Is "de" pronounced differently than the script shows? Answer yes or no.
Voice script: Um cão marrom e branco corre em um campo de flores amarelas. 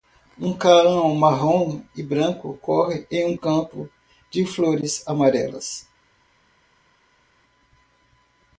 no